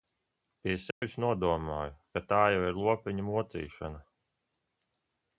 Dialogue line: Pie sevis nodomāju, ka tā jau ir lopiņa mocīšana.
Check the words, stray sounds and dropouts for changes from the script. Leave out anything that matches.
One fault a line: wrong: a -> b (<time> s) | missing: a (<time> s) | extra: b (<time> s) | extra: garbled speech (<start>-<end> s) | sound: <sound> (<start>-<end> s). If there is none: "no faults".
sound: dropout (0.9-1.0 s)